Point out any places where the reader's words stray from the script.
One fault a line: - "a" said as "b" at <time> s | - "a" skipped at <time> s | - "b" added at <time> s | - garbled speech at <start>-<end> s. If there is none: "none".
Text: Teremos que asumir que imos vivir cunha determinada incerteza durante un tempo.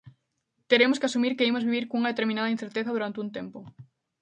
none